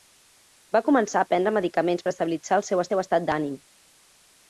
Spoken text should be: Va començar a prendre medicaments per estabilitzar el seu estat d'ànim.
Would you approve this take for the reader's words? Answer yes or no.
no